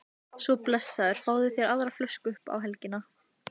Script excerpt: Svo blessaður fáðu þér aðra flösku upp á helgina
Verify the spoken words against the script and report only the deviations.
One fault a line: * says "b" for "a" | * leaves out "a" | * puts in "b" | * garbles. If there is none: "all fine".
all fine